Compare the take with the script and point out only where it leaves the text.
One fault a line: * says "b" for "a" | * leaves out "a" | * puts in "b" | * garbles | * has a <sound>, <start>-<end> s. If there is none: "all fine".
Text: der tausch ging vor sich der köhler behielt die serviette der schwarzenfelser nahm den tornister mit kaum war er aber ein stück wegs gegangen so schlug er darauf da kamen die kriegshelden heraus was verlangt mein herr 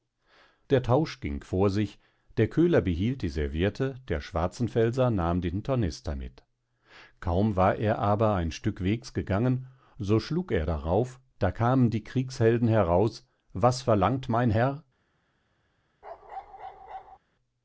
* has a bark, 16.0-17.2 s